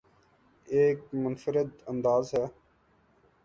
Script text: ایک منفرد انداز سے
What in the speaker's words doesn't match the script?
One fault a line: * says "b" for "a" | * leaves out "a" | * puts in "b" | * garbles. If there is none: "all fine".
all fine